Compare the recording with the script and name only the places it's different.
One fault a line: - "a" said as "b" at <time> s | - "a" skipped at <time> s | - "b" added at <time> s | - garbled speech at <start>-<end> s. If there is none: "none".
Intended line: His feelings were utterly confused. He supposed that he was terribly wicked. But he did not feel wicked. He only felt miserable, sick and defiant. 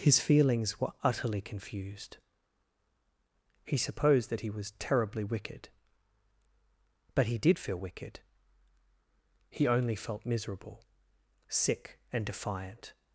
- "not" skipped at 7.6 s